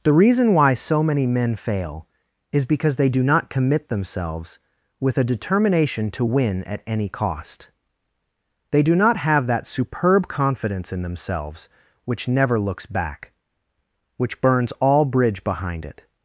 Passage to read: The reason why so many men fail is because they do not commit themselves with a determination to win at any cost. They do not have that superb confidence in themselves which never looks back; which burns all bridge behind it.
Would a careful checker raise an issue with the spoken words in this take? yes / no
no